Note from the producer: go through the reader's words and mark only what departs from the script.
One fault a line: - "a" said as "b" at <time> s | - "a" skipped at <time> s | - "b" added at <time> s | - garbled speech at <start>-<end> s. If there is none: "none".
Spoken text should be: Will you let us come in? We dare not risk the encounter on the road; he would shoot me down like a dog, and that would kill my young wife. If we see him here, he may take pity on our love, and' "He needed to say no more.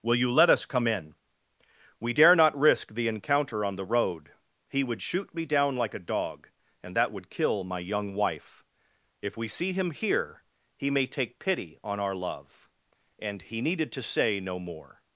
none